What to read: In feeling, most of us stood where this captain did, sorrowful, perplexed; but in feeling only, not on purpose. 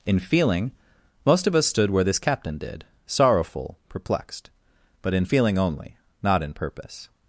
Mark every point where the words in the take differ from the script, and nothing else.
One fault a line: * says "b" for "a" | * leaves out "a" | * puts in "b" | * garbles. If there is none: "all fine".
* says "in" for "on"